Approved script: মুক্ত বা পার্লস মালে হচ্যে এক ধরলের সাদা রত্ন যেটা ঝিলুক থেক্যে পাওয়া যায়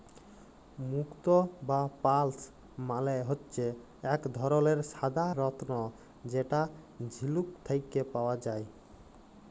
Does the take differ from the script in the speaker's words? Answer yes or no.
no